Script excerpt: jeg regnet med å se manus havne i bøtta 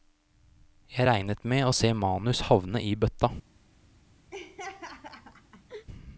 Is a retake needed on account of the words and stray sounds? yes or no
yes